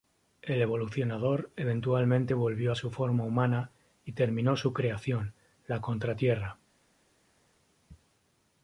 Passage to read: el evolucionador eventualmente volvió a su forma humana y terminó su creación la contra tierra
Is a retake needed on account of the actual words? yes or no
no